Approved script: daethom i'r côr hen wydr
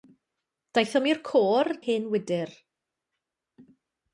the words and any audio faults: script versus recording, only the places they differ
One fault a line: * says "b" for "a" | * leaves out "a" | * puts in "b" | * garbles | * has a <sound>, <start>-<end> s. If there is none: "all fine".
all fine